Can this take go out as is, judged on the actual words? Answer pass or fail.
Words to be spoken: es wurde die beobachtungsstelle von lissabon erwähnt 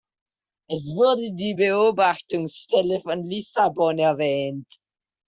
pass